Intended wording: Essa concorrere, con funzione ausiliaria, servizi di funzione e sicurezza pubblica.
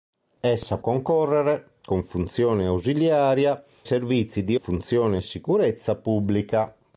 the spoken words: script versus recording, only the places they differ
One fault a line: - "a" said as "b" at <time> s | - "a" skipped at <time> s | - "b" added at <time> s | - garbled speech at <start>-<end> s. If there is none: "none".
none